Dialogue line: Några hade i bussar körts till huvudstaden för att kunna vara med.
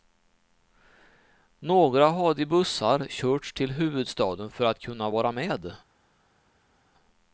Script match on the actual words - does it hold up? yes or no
yes